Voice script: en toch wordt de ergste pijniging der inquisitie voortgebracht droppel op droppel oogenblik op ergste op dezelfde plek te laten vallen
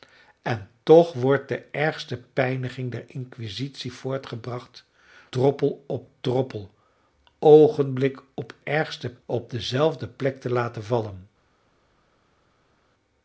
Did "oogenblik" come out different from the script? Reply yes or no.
no